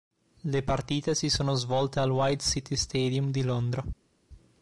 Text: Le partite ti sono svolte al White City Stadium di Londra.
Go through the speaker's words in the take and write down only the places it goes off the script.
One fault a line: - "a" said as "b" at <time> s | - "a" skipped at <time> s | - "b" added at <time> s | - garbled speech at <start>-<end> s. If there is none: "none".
- "ti" said as "si" at 1.1 s